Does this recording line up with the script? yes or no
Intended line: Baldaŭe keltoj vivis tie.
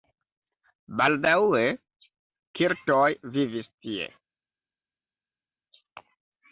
yes